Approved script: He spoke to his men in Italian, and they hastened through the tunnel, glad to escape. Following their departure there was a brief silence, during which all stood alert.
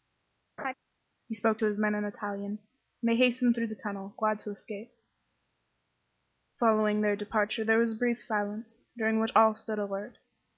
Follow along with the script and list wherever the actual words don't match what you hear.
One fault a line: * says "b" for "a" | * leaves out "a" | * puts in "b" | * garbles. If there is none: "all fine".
all fine